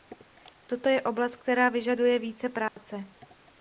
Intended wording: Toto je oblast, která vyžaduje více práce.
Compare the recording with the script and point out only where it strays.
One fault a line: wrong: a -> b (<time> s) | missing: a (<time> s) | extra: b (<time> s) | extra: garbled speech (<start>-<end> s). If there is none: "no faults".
no faults